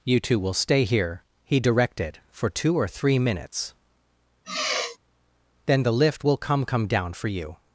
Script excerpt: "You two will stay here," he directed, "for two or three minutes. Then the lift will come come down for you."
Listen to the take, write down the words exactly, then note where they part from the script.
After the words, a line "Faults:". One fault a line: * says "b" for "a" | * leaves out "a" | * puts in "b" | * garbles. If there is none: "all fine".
"You two will stay here," he directed, "for two or three minutes. Then the lift will come come down for you."
Faults:
all fine